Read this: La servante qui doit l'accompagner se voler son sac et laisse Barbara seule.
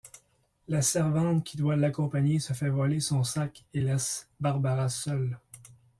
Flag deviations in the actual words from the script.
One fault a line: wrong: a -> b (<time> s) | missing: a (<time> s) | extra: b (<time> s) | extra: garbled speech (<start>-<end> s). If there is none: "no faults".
extra: fait (2.5 s)